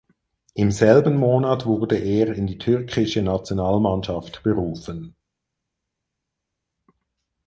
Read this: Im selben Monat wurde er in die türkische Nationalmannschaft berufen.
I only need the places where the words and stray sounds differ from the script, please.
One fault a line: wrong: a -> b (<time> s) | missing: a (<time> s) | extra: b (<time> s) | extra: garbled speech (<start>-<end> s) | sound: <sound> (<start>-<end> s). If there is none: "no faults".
no faults